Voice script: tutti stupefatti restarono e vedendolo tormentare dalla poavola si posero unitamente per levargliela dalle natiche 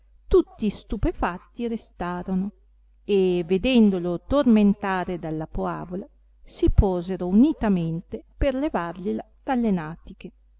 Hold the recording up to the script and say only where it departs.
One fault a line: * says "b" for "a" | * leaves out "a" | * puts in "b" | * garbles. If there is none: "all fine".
all fine